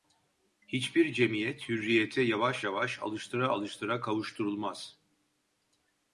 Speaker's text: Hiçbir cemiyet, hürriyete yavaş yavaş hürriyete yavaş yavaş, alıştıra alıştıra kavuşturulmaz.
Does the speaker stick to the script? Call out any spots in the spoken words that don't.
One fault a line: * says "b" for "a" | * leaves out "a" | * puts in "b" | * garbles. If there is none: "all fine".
* leaves out "hürriyete yavaş yavaş"